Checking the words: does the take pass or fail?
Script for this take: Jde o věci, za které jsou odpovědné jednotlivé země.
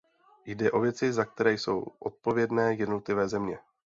pass